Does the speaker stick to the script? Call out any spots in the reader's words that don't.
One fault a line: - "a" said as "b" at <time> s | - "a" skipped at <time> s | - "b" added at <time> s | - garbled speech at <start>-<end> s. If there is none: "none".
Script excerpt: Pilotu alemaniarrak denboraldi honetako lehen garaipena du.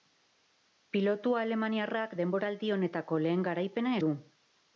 none